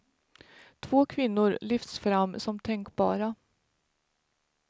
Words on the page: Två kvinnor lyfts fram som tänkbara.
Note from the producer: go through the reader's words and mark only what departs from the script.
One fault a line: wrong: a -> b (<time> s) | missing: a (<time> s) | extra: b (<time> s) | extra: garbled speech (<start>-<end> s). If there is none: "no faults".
no faults